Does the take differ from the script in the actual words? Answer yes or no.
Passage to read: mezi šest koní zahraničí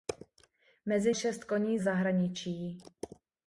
no